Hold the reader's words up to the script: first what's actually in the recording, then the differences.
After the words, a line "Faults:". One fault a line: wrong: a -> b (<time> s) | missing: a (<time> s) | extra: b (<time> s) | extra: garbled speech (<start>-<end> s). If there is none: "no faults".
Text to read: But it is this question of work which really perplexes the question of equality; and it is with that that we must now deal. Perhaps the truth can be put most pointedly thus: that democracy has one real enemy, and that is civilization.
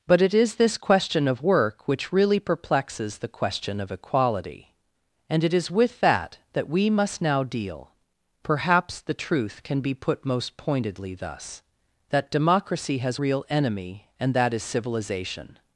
But it is this question of work which really perplexes the question of equality; and it is with that that we must now deal. Perhaps the truth can be put most pointedly thus: that democracy has real enemy, and that is civilization.
Faults:
missing: one (13.2 s)